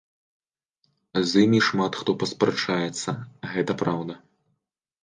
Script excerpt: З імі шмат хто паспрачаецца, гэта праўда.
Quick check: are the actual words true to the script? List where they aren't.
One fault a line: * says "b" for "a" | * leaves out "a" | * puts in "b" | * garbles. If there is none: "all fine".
all fine